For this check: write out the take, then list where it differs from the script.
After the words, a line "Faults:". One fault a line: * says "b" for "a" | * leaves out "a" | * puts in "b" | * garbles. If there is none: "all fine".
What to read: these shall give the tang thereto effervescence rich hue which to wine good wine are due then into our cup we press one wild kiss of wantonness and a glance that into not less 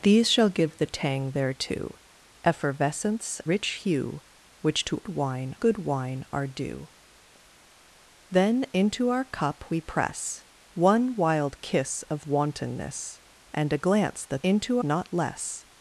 these shall give the tang thereto effervescence rich hue which to wine good wine are due then into our cup we press one wild kiss of wantonness and a glance that into not less
Faults:
all fine